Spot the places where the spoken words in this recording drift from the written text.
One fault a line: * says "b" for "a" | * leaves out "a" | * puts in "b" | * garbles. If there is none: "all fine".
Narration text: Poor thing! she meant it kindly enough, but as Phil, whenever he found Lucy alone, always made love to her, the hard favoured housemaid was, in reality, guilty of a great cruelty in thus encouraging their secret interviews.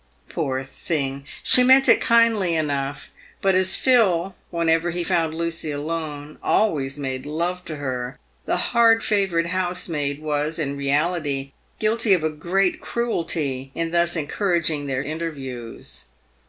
* leaves out "secret"